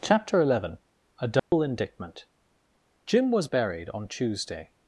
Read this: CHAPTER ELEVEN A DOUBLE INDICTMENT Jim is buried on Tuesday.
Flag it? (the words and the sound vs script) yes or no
yes